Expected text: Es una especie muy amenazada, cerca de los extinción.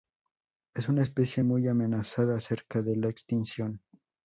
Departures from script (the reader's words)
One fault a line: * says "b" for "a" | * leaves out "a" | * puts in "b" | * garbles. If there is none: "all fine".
* says "la" for "los"